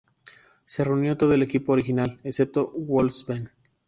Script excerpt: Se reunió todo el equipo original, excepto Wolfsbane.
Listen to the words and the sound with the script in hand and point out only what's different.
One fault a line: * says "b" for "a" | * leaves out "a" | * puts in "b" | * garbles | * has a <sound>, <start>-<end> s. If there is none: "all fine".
all fine